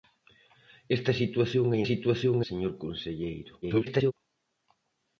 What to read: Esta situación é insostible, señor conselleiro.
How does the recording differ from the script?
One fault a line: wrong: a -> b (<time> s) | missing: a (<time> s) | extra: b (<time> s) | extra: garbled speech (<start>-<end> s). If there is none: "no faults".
wrong: insostible -> situación (1.9 s)
extra: garbled speech (3.6-4.1 s)